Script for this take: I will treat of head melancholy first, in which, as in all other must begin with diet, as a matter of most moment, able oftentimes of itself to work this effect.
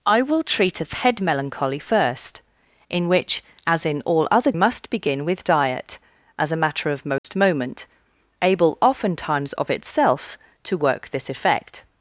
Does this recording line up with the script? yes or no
yes